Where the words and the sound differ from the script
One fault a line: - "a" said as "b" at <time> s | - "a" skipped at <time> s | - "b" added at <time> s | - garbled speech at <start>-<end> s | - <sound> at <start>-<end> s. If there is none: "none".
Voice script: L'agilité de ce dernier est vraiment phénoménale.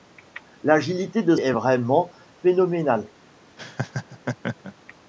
- "ce dernier" skipped at 1.4 s
- laugh at 3.6-4.7 s